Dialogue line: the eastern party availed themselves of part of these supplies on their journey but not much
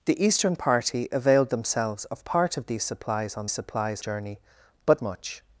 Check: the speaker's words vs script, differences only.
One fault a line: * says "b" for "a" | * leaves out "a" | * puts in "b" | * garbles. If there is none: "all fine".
* says "supplies" for "their"
* leaves out "not"